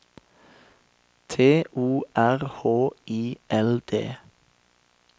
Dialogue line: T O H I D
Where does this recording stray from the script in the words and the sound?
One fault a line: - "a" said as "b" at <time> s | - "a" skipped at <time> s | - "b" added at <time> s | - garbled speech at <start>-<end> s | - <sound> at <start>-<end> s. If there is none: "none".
- "R" added at 2.1 s
- "L" added at 3.5 s